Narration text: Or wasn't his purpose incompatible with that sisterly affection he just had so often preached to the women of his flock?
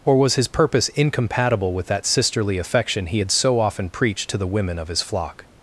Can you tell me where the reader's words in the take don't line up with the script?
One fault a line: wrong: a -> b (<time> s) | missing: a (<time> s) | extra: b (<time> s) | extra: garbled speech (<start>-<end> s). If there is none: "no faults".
wrong: wasn't -> was (0.2 s)
missing: just (3.2 s)